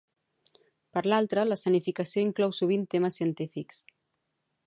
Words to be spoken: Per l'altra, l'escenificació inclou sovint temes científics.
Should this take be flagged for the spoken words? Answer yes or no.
no